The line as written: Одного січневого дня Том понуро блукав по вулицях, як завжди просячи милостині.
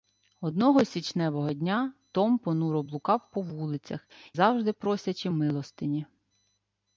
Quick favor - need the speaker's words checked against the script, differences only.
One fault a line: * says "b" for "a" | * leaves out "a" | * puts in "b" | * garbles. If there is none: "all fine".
* leaves out "як"